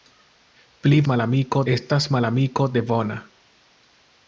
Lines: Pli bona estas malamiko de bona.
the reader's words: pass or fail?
fail